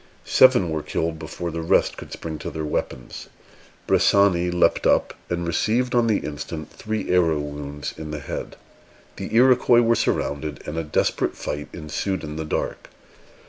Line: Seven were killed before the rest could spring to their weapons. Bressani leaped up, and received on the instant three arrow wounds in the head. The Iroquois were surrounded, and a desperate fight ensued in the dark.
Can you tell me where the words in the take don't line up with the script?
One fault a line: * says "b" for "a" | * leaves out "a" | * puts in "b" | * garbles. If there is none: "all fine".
all fine